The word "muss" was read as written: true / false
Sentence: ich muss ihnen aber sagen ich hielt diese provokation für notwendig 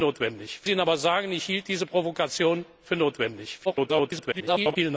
false